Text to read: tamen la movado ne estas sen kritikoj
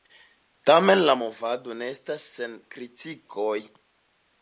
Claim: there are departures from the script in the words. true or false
false